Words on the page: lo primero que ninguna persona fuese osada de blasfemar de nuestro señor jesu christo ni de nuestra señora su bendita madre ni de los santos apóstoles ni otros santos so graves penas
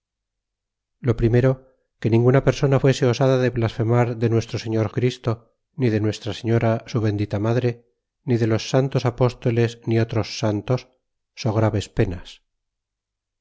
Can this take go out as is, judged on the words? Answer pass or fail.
fail